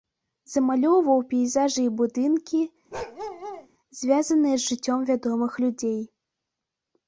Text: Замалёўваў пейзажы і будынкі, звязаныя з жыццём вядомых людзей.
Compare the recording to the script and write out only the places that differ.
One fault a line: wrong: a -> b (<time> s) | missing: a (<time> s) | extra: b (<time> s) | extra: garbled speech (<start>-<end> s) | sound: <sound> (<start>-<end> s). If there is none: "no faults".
sound: bark (2.9-3.7 s)